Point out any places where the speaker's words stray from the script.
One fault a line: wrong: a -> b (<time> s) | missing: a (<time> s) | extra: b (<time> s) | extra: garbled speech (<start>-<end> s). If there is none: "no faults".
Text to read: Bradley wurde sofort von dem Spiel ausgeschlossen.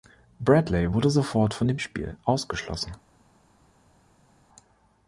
no faults